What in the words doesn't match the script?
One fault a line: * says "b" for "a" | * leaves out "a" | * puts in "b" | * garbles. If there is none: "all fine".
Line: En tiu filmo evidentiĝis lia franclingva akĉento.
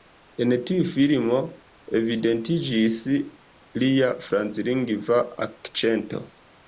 all fine